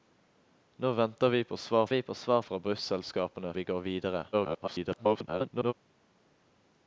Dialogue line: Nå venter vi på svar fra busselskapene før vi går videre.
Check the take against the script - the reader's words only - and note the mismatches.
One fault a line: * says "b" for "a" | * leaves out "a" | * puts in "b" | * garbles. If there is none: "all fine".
* puts in "vi på svar"
* leaves out "før"
* garbles